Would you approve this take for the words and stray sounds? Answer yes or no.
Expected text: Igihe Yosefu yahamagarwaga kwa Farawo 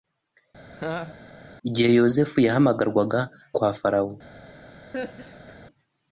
no